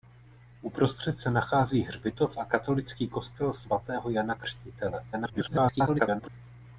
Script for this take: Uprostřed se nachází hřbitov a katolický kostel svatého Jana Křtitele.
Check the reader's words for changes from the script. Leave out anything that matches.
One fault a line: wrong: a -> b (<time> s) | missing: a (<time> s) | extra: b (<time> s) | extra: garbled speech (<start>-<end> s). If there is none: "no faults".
extra: garbled speech (5.1-6.3 s)